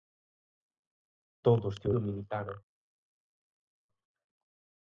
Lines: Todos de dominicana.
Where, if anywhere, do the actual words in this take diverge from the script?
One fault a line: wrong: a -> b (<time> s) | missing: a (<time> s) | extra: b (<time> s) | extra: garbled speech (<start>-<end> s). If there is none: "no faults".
no faults